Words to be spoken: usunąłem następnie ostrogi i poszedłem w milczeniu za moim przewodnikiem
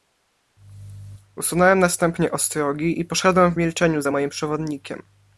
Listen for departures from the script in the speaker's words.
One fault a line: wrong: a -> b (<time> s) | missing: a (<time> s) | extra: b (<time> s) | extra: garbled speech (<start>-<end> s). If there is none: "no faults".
no faults